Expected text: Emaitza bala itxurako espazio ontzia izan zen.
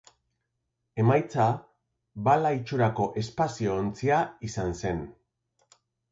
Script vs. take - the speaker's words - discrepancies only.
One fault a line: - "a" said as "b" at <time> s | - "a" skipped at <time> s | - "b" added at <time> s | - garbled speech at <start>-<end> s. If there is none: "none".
none